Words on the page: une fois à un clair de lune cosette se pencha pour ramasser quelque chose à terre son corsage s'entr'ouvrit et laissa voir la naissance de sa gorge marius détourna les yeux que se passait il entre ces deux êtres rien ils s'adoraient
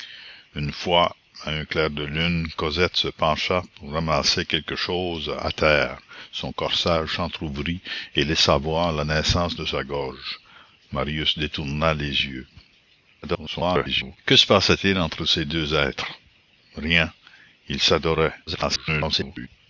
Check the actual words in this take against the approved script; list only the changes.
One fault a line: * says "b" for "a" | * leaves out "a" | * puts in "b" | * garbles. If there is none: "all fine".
* garbles
* garbles